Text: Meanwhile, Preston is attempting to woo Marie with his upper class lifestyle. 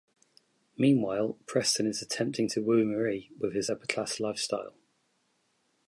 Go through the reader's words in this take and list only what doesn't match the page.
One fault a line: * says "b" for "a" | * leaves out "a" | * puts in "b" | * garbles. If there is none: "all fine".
all fine